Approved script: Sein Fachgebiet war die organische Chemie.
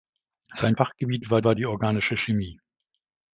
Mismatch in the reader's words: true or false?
true